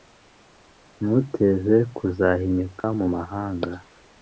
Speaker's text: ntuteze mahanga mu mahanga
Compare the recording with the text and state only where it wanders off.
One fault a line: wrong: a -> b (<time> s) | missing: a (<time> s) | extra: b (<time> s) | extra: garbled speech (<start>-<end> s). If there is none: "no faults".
wrong: mahanga -> kuzahinyuka (1.9 s)